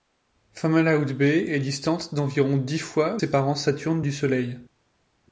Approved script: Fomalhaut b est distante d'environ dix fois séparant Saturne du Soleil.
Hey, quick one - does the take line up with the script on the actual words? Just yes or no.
yes